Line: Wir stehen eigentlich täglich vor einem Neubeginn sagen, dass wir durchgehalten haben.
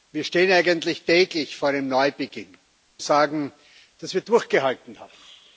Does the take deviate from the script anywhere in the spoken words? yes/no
no